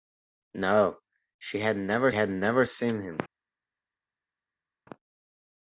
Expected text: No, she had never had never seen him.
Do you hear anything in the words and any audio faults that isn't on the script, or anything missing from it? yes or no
no